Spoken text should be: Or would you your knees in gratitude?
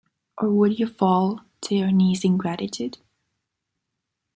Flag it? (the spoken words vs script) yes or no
yes